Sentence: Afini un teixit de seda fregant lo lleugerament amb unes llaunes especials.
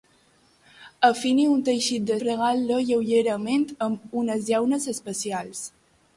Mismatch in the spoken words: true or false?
true